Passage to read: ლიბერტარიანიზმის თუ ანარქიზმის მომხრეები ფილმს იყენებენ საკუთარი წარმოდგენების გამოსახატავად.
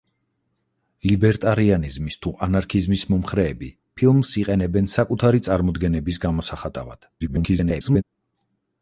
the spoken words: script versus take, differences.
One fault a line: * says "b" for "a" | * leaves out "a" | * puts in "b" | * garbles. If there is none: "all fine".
* garbles